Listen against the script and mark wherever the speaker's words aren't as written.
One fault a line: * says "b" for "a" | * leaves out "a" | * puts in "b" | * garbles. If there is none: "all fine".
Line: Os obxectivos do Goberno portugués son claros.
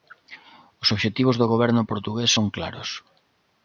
all fine